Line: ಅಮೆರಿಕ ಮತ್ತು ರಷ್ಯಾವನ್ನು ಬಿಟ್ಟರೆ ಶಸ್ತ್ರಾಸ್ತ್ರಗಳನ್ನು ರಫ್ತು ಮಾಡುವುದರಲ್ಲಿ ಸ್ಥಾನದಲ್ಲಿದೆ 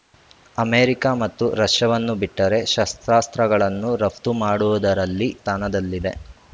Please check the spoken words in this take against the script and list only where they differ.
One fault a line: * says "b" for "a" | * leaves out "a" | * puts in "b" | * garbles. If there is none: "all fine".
all fine